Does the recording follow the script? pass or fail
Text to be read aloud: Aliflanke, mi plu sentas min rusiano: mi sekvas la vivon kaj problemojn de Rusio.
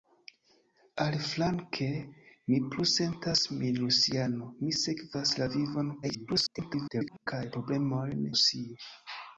fail